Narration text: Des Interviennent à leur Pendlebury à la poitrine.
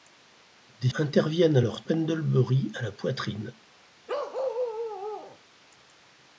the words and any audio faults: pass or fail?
fail